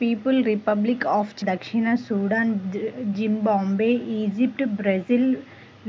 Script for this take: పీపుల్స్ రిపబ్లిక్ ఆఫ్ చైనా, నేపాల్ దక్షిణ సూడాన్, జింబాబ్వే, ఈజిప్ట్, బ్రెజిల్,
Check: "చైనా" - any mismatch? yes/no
yes